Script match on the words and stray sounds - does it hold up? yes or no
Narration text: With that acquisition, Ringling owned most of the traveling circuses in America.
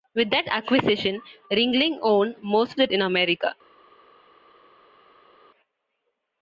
no